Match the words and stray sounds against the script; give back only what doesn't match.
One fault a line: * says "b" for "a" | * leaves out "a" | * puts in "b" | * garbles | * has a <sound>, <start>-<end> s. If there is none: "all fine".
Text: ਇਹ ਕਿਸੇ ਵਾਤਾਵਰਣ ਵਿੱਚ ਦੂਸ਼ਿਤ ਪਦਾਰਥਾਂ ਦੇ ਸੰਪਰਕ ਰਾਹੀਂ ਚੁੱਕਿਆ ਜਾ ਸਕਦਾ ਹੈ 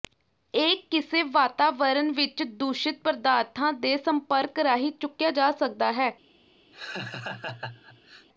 * has a laugh, 6.7-8.3 s